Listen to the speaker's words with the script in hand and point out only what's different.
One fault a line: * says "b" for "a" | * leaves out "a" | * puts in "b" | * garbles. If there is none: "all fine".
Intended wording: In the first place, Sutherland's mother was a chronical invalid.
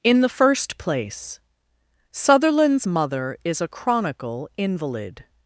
* says "is" for "was"